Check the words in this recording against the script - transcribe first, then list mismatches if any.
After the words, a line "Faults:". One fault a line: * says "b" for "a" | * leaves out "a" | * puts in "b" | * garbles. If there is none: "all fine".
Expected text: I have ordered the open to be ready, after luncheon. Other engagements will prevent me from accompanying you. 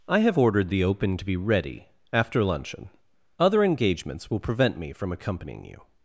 I have ordered the open to be ready, after luncheon. Other engagements will prevent me from accompanying you.
Faults:
all fine